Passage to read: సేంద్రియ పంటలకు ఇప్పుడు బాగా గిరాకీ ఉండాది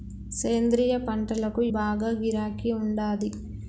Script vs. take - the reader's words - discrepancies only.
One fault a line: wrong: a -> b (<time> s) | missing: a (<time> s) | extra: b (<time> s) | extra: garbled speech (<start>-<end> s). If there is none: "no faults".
missing: ఇప్పుడు (1.6 s)